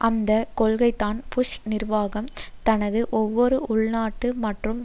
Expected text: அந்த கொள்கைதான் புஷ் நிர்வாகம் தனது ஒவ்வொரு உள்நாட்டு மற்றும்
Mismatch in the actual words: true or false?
false